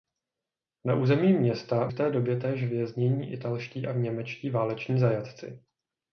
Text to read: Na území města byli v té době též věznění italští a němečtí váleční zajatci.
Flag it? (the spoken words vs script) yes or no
yes